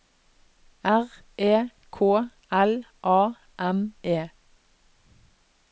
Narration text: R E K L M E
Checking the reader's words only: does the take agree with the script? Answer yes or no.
no